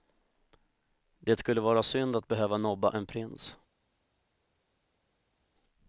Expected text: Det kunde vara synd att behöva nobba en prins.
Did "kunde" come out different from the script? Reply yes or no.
yes